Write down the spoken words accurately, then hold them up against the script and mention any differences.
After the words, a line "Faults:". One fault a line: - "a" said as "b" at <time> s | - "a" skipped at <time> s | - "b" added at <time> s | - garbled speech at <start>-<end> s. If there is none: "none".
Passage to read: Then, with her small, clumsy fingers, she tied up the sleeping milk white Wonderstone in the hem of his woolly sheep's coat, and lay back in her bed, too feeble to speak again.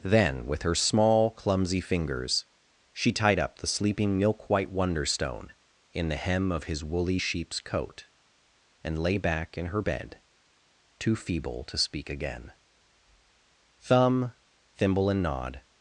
Then, with her small, clumsy fingers, she tied up the sleeping milk white Wonderstone in the hem of his woolly sheep's coat, and lay back in her bed, too feeble to speak again. Thumb, Thimble, and Nod
Faults:
- "Thumb Thimble and Nod" added at 13.8 s